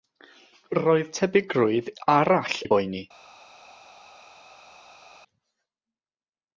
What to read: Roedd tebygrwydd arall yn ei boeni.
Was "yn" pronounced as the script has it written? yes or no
no